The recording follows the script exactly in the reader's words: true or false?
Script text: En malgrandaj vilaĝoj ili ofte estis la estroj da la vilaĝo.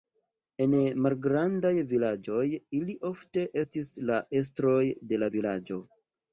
false